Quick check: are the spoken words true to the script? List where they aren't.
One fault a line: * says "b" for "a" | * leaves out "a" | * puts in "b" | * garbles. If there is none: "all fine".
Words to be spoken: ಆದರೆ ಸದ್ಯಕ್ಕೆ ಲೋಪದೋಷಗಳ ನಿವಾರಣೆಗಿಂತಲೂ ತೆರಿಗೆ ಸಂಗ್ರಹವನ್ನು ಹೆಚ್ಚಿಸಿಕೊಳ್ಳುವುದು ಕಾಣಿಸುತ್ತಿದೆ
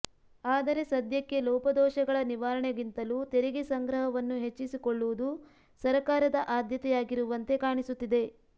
* puts in "ಸರಕಾರದ ಆದ್ಯತೆಯಾಗಿರುವಂತೆ"